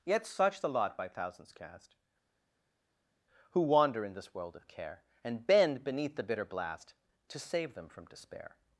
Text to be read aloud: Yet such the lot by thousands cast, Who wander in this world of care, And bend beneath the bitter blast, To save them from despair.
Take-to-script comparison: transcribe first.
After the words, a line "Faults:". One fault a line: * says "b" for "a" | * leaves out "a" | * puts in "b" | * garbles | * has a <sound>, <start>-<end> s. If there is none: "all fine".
Yet such the lot by thousands cast, Who wander in this world of care, And bend beneath the bitter blast, To save them from despair.
Faults:
all fine